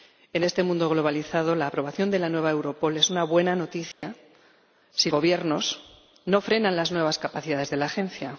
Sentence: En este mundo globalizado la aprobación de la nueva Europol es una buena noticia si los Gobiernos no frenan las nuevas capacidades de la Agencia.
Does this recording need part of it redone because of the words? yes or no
yes